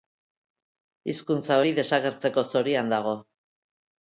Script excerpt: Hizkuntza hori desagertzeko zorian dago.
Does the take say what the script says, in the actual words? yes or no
yes